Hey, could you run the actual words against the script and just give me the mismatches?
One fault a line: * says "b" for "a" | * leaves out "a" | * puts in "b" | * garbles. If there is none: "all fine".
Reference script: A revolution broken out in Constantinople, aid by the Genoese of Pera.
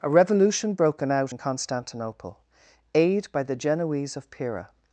all fine